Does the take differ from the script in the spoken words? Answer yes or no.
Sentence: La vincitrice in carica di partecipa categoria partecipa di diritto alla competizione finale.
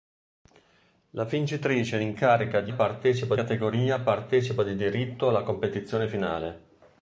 no